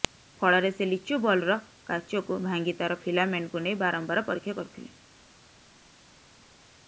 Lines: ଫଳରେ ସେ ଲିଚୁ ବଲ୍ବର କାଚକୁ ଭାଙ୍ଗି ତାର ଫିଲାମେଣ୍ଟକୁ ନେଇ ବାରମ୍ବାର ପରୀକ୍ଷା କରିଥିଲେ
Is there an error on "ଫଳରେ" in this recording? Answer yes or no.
no